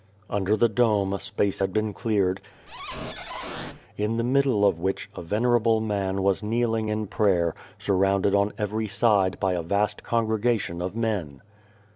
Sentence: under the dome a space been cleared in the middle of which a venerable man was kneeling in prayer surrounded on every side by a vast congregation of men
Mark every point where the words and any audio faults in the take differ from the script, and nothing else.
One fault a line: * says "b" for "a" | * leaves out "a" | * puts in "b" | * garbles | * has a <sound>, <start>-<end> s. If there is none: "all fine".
* puts in "had"
* has a squeak, 2.7-3.8 s